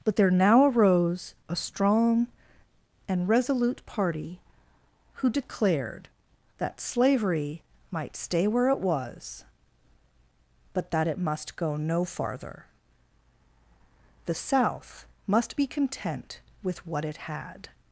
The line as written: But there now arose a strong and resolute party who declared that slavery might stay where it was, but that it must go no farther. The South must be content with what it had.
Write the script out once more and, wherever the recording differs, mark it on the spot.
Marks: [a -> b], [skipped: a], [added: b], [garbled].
But there now arose a strong and resolute party who declared that slavery might stay where it was, but that it must go no farther. The South must be content with what it had.